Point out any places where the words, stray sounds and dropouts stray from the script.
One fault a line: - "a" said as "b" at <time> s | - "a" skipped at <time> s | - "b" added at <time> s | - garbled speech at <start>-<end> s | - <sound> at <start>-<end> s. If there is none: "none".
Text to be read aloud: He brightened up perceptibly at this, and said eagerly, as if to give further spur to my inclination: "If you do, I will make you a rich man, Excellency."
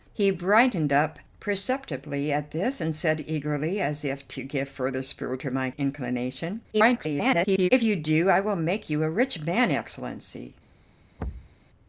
- garbled speech at 6.7-7.7 s
- thud at 11.2-11.6 s